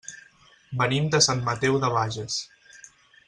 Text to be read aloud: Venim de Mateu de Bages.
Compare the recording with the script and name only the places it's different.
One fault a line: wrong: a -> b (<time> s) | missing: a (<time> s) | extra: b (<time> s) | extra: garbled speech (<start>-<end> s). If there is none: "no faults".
extra: Sant (1.3 s)